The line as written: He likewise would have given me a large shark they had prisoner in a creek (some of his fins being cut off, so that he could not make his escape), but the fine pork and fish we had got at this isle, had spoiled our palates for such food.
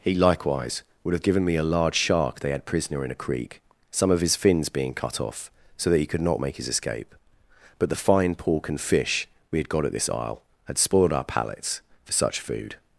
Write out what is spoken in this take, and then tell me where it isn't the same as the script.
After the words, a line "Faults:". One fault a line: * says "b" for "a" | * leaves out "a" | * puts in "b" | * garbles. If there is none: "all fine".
He likewise would have given me a large shark they had prisoner in a creek (some of his fins being cut off, so that he could not make his escape), but the fine pork and fish we had got at this isle, had spoiled our palates for such food.
Faults:
all fine